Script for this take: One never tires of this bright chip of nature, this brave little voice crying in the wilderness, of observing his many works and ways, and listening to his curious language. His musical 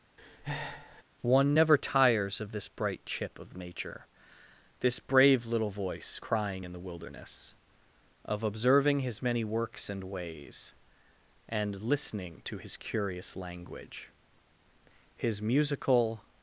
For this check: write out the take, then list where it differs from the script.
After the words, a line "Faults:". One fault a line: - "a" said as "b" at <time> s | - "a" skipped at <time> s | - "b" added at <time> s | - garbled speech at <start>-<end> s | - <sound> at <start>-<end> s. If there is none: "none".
One never tires of this bright chip of nature, this brave little voice crying in the wilderness, of observing his many works and ways, and listening to his curious language. His musical
Faults:
- breath at 0.2-1.0 s